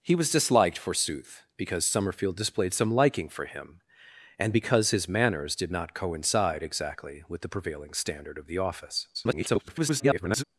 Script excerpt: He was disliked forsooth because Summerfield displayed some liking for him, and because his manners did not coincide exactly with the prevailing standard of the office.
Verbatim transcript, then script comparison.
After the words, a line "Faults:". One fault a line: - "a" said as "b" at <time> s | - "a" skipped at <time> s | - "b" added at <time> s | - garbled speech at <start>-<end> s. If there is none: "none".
He was disliked forsooth because Summerfield displayed some liking for him, and because his manners did not coincide exactly with the prevailing standard of the office. [garbled]
Faults:
- garbled speech at 9.1-10.4 s